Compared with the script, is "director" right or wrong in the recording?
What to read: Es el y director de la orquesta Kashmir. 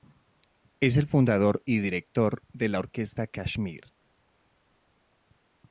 right